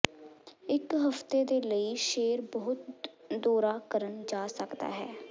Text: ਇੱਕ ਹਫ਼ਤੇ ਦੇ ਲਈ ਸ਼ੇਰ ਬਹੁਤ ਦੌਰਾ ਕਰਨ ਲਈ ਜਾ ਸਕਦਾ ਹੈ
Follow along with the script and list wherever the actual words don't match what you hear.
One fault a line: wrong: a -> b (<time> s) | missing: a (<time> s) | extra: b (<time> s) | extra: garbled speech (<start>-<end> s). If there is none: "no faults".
missing: ਲਈ (4.2 s)